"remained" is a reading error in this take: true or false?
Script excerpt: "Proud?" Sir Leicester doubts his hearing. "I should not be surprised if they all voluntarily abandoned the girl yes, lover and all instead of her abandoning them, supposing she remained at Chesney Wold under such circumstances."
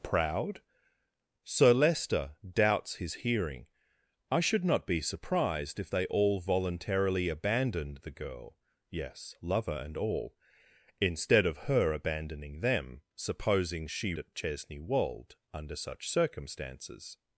true